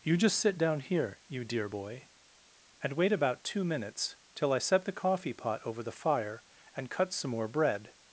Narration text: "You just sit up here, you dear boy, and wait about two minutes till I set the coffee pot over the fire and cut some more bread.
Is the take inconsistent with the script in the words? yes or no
yes